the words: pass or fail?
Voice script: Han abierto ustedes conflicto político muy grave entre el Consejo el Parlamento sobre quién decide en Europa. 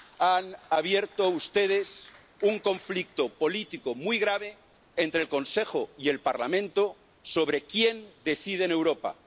fail